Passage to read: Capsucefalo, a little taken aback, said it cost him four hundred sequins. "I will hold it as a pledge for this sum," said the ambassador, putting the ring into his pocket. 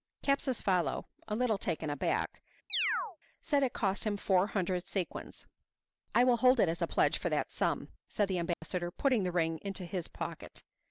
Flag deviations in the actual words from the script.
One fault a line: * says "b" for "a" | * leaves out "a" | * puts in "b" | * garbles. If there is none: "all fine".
* says "that" for "this"